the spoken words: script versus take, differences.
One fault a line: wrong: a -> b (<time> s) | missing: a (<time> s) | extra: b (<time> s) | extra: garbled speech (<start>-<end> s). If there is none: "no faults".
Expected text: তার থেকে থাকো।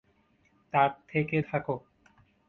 no faults